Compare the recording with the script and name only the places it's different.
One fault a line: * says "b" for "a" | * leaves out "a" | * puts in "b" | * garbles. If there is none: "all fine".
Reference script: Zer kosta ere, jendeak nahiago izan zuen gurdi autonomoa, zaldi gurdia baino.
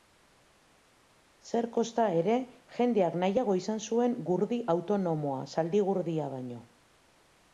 all fine